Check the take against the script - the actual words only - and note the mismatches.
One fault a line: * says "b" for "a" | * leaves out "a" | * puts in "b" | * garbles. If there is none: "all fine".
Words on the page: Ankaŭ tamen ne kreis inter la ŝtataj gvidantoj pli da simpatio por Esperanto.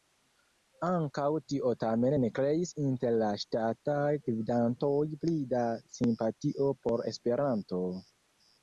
* puts in "tio"